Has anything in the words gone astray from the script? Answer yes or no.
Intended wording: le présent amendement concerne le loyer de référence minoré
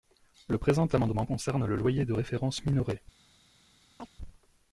no